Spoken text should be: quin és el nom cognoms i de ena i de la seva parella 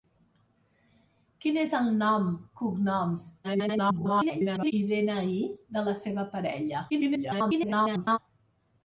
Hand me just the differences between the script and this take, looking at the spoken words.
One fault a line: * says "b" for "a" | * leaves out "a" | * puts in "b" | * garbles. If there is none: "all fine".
* garbles
* garbles